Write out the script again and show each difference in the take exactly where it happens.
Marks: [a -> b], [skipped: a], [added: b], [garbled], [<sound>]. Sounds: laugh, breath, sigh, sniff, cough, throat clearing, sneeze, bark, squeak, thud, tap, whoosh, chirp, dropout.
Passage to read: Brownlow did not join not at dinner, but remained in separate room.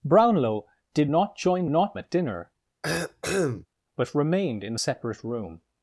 Brownlow did not join not at dinner, [cough] but remained in separate room.